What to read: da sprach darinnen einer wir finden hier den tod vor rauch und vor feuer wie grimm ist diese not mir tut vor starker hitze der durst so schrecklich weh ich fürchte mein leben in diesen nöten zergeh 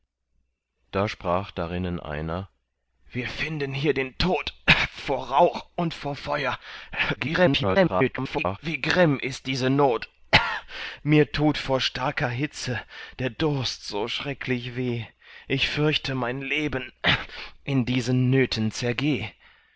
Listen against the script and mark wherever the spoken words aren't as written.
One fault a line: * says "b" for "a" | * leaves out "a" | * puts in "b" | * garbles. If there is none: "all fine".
* garbles